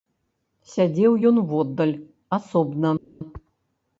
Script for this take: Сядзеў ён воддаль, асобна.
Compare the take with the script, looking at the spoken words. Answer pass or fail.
pass